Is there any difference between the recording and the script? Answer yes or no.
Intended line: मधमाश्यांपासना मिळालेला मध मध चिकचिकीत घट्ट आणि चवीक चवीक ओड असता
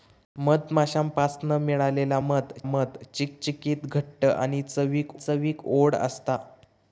no